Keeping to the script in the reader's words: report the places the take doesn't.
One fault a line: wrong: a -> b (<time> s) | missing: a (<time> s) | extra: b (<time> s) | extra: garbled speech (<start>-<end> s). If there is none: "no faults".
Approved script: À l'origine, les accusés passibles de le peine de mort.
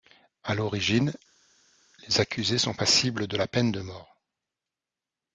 extra: sont (2.6 s)
wrong: le -> la (3.4 s)